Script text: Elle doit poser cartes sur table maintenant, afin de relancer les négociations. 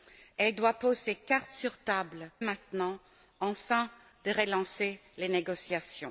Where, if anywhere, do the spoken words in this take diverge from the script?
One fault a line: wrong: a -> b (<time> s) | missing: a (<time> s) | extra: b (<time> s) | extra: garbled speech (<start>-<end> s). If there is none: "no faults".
no faults